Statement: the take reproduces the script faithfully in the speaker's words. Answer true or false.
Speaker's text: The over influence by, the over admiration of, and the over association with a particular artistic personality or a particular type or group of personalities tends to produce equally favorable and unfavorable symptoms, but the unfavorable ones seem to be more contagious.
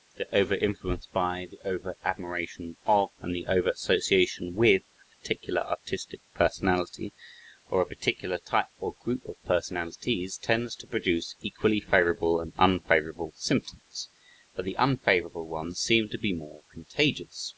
true